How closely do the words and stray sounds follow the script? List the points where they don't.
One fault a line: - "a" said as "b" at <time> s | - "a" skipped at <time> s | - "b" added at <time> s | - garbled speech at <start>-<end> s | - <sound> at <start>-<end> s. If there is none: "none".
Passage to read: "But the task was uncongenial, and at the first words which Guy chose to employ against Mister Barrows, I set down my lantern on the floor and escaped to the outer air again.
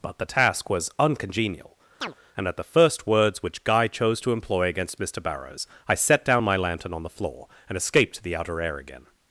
- chirp at 2.0-2.1 s